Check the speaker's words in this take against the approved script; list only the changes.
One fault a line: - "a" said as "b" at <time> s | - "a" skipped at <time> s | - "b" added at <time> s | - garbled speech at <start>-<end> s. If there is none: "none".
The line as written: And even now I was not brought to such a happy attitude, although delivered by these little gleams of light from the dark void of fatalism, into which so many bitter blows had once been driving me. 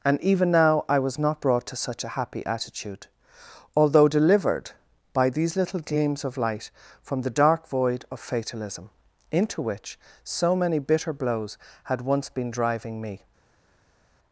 none